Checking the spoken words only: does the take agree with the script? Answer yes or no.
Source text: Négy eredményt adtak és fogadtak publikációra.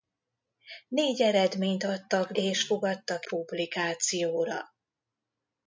yes